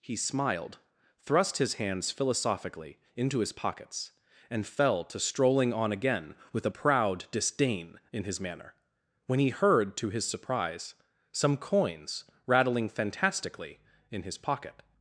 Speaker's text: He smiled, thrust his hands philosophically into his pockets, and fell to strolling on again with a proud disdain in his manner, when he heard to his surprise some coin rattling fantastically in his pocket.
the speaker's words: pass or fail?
fail